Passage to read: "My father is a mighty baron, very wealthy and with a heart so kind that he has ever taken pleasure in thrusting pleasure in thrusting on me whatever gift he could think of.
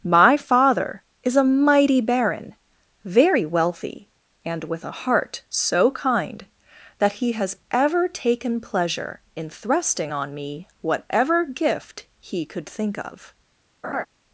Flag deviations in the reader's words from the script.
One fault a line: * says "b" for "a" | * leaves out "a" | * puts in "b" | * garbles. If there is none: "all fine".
* leaves out "pleasure in thrusting"